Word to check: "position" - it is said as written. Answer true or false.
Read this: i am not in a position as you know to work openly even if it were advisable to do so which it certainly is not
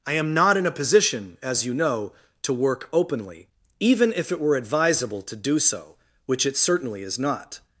true